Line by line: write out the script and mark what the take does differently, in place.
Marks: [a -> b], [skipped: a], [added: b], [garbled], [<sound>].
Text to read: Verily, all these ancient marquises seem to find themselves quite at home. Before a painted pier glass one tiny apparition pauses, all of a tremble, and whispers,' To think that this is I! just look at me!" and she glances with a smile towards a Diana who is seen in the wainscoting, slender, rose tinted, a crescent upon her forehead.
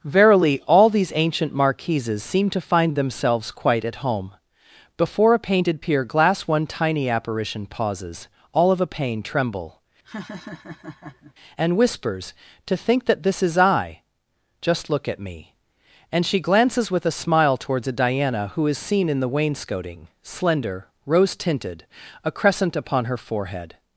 Verily, all these ancient marquises seem to find themselves quite at home. Before a painted pier glass one tiny apparition pauses, all of a [added: pain] tremble, [laugh] and whispers,' To think that this is I! just look at me!" and she glances with a smile towards a Diana who is seen in the wainscoting, slender, rose tinted, a crescent upon her forehead.